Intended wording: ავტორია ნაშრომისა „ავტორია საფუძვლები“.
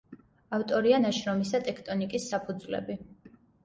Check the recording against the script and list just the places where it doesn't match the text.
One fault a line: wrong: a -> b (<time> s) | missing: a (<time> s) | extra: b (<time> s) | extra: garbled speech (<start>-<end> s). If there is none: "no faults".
wrong: ავტორია -> ტექტონიკის (1.7 s)